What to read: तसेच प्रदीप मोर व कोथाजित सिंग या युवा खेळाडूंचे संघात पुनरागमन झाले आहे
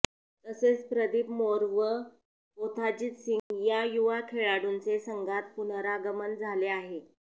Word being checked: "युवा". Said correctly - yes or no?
yes